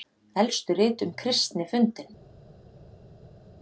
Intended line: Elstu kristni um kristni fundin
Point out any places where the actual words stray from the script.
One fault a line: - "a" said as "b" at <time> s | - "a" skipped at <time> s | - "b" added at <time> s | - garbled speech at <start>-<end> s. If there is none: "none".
- "kristni" said as "rit" at 0.8 s